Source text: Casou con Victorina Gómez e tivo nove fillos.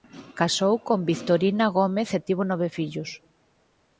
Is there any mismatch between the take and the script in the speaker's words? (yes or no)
no